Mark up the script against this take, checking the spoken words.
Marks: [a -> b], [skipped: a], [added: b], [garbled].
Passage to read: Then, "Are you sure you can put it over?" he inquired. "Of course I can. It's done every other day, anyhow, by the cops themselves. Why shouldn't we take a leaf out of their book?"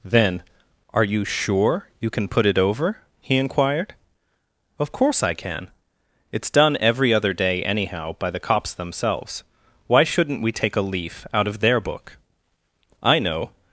Then, "Are you sure you can put it over?" he inquired. "Of course I can. It's done every other day, anyhow, by the cops themselves. Why shouldn't we take a leaf out of their book?" [added: I know]